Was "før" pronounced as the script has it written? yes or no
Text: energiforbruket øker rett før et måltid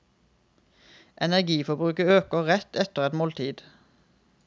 no